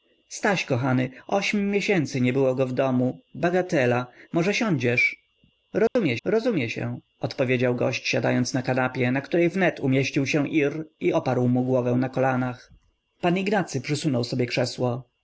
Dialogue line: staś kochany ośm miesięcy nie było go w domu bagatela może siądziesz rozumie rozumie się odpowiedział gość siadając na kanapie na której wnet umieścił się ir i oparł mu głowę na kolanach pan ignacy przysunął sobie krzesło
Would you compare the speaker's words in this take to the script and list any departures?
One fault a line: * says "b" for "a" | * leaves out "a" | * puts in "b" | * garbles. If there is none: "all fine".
all fine